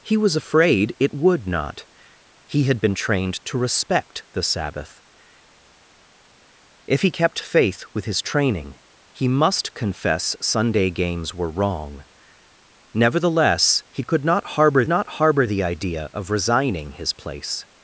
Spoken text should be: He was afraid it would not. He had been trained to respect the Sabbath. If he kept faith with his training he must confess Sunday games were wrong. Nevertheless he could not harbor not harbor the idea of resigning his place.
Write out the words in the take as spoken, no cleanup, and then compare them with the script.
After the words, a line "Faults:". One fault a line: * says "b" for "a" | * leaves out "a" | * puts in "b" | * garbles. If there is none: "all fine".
He was afraid it would not. He had been trained to respect the Sabbath. If he kept faith with his training he must confess Sunday games were wrong. Nevertheless he could not harbor not harbor the idea of resigning his place.
Faults:
all fine